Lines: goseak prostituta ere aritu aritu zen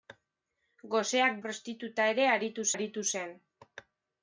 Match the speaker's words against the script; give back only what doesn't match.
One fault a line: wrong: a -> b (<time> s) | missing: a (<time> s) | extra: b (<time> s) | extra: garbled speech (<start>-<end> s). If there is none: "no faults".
no faults